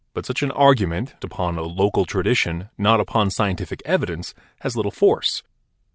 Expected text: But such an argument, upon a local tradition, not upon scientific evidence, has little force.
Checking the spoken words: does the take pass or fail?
pass